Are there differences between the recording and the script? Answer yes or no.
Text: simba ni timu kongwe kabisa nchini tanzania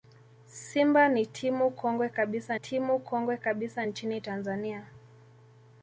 yes